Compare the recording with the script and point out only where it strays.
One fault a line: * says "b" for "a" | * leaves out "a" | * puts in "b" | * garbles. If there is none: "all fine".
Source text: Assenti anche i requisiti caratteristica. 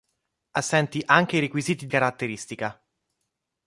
all fine